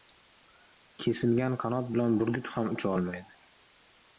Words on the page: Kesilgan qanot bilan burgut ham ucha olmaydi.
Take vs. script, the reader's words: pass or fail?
pass